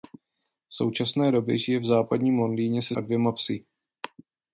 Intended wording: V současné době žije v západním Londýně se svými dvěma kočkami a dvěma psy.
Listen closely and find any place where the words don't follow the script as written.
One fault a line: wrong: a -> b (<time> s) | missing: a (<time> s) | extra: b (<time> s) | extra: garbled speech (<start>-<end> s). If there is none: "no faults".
missing: svými dvěma kočkami (3.0 s)